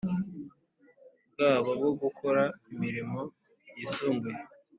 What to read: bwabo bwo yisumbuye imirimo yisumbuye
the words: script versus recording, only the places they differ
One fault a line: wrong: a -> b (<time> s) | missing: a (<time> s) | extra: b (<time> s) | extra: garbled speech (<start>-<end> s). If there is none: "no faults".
wrong: yisumbuye -> gukora (2.0 s)